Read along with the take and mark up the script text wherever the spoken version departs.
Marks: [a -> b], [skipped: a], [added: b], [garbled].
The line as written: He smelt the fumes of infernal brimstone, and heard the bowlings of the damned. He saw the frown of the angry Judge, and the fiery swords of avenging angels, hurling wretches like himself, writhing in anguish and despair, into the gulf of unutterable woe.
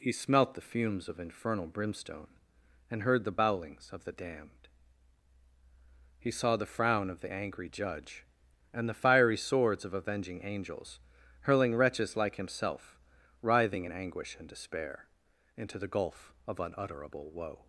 He smelt the fumes of infernal brimstone, and heard the bowlings of the damned. He saw the frown of the angry Judge, and the fiery swords of avenging angels, hurling wretches like himself, writhing in anguish and despair, into the gulf of unutterable woe.